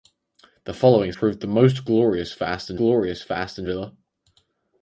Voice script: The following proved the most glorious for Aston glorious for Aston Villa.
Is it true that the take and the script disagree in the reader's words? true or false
false